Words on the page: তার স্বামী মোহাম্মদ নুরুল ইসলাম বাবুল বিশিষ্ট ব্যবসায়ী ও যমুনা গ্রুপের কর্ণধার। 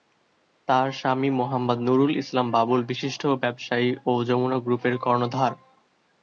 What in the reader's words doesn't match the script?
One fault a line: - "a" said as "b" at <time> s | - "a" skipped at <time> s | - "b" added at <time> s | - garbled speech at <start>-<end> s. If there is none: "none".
none